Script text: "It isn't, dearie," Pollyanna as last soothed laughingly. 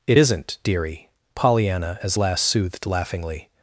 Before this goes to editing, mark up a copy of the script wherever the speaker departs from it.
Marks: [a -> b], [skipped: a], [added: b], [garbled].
"It isn't, dearie," Pollyanna as last soothed laughingly.